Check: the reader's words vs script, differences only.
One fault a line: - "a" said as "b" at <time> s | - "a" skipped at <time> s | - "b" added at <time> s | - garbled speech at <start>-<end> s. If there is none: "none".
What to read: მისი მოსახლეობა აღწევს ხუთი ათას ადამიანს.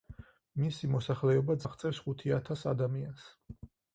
none